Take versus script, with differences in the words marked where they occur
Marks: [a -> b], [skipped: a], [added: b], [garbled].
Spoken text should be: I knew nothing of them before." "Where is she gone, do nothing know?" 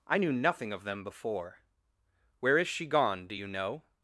I knew nothing of them before." "Where is she gone, do [nothing -> you] know?"